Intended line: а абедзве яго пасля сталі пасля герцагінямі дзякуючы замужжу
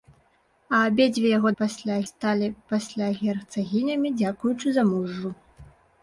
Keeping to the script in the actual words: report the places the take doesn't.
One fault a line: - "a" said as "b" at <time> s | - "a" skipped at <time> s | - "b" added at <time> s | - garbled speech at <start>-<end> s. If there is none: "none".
none